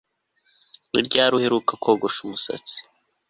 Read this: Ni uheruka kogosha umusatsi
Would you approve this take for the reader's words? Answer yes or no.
no